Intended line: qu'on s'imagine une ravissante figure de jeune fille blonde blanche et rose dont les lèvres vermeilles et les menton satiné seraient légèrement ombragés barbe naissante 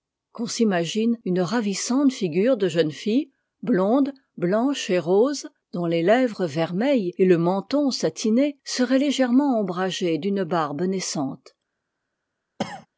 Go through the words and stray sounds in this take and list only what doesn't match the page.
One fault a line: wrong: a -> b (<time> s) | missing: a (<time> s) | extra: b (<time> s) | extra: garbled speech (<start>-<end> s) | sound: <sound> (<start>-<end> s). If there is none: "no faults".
wrong: les -> le (7.2 s)
extra: d'une (10.2 s)
sound: cough (12.6-12.9 s)